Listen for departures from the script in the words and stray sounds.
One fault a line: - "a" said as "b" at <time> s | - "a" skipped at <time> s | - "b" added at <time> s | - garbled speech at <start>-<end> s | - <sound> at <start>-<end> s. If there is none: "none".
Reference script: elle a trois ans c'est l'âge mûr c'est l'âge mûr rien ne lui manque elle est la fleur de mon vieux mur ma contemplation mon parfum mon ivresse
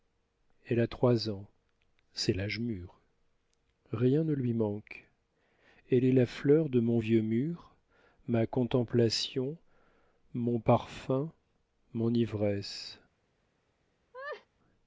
- "c'est l'âge mûr" skipped at 3.0 s
- laugh at 14.1-14.5 s